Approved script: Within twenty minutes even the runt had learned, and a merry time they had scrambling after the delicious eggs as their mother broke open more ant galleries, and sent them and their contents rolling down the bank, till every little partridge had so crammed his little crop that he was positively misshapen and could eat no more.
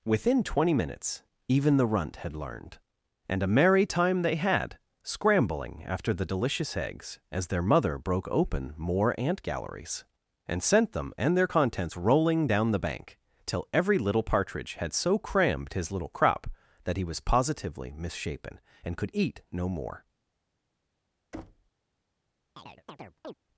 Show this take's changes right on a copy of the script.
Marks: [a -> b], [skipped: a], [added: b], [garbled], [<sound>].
Within twenty minutes even the runt had learned, and a merry time they had scrambling after the delicious eggs as their mother broke open more ant galleries, and sent them and their contents rolling down the bank, till every little partridge had so crammed his little crop that he was positively misshapen and could eat no more. [thud] [chirp]